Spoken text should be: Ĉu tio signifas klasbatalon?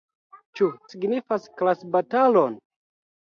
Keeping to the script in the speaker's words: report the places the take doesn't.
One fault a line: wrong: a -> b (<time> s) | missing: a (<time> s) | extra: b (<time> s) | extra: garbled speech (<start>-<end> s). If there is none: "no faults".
missing: tio (0.7 s)